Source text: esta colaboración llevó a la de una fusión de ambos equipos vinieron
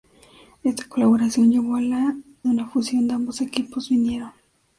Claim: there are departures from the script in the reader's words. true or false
false